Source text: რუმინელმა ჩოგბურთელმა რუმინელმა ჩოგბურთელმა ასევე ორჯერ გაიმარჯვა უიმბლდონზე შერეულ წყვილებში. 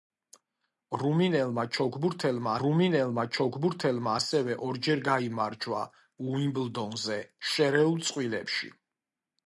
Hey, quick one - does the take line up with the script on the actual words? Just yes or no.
yes